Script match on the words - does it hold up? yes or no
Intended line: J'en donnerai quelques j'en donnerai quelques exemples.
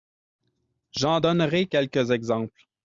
no